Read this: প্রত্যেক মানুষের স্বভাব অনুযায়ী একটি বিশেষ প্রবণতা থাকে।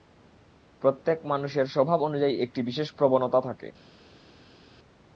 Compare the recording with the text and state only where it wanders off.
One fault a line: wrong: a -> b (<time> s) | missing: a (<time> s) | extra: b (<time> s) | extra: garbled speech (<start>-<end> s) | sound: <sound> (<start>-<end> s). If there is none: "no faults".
no faults